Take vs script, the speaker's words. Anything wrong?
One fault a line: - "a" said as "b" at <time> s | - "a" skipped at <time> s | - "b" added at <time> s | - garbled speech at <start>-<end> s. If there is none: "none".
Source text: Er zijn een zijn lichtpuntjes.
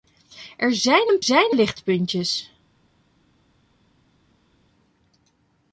none